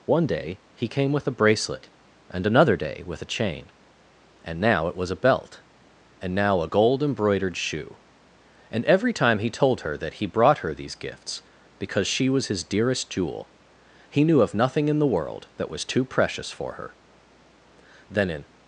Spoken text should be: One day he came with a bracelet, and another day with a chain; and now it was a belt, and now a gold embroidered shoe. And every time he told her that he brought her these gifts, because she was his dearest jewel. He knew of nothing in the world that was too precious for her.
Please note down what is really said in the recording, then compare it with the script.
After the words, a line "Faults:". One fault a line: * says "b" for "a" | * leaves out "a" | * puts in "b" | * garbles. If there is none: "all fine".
One day he came with a bracelet, and another day with a chain; and now it was a belt, and now a gold embroidered shoe. And every time he told her that he brought her these gifts, because she was his dearest jewel. He knew of nothing in the world that was too precious for her. Then, in
Faults:
* puts in "Then in"